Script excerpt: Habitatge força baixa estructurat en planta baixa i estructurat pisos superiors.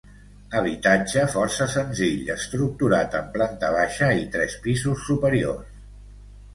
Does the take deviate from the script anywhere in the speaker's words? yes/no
yes